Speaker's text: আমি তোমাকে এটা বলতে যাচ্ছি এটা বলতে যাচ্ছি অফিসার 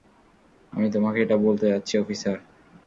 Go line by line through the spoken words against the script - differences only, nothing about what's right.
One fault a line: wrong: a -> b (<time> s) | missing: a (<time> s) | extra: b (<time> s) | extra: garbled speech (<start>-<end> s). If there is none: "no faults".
missing: এটা বলতে যাচ্ছি (1.9 s)